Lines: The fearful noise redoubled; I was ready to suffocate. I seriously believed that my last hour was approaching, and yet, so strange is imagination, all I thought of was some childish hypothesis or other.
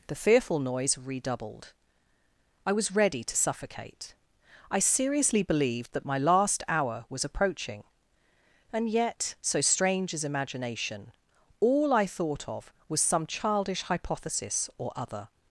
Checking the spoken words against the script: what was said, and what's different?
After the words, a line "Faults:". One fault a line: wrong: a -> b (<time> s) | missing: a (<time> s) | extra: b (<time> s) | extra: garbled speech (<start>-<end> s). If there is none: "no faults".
The fearful noise redoubled; I was ready to suffocate. I seriously believed that my last hour was approaching, and yet, so strange is imagination, all I thought of was some childish hypothesis or other.
Faults:
no faults